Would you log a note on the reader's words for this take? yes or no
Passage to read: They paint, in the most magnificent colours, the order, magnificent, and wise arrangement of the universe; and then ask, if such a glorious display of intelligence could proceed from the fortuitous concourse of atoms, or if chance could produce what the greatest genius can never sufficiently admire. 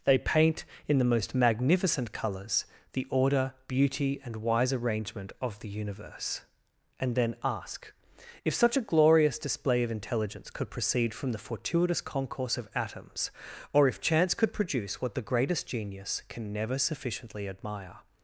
yes